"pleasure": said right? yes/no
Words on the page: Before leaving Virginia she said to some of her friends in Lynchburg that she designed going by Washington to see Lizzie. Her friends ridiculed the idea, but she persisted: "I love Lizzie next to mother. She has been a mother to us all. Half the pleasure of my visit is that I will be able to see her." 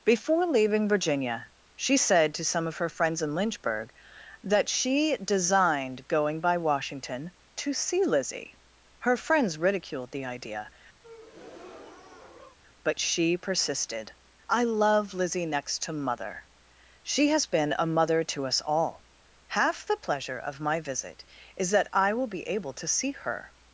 yes